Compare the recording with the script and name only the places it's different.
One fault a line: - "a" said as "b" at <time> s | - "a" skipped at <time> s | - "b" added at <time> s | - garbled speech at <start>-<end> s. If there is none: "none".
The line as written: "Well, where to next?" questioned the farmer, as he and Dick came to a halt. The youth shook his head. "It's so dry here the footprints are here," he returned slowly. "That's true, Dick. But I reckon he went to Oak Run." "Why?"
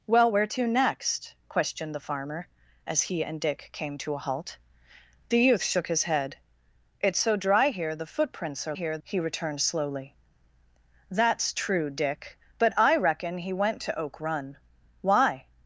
none